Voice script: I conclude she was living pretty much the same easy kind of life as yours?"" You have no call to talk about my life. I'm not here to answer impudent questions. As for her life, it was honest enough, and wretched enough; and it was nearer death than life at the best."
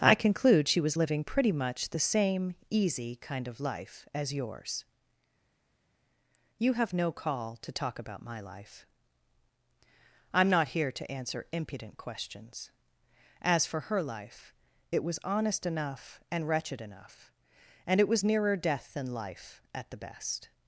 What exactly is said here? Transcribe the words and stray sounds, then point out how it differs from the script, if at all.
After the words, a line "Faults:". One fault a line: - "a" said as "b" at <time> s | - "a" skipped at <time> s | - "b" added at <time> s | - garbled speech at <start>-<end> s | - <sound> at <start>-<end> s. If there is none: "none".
I conclude she was living pretty much the same easy kind of life as yours?"" You have no call to talk about my life. I'm not here to answer impudent questions. As for her life, it was honest enough, and wretched enough; and it was nearer death than life at the best."
Faults:
none